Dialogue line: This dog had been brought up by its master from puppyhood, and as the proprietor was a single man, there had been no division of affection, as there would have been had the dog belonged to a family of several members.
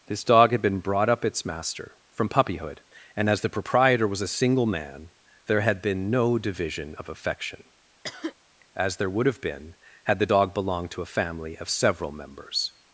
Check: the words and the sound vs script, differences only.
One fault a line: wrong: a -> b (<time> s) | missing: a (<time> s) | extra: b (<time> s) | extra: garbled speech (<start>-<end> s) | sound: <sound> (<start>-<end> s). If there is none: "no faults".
missing: by (1.2 s)
sound: cough (8.0-8.3 s)